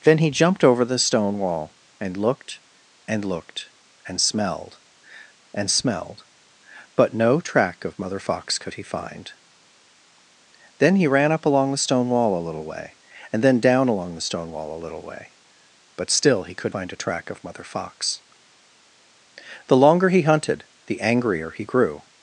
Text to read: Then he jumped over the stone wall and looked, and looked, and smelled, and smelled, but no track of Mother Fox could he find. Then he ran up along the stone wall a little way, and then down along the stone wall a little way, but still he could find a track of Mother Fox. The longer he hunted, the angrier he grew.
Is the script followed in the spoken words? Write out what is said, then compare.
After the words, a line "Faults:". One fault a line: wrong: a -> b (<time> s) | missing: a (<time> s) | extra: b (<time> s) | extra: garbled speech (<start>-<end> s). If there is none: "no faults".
Then he jumped over the stone wall and looked, and looked, and smelled, and smelled, but no track of Mother Fox could he find. Then he ran up along the stone wall a little way, and then down along the stone wall a little way, but still he could find a track of Mother Fox. The longer he hunted, the angrier he grew.
Faults:
no faults